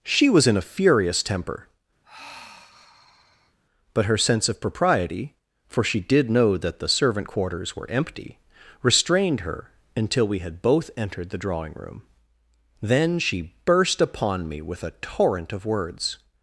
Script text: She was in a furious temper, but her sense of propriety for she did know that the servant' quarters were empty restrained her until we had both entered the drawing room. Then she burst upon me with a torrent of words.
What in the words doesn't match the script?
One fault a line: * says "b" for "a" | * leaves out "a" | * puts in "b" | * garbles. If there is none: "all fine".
all fine